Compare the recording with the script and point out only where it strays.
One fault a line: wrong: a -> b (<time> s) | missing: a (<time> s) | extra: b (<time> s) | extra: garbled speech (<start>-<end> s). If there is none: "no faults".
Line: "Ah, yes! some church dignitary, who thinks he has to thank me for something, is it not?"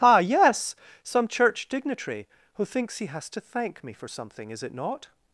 no faults